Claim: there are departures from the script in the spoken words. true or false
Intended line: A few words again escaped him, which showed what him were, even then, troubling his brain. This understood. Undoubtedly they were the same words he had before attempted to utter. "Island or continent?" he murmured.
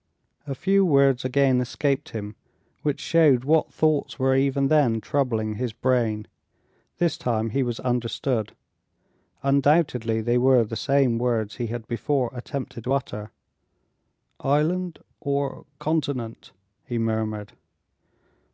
true